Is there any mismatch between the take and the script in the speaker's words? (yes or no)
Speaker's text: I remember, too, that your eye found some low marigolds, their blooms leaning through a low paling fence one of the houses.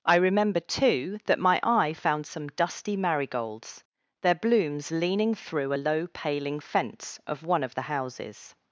yes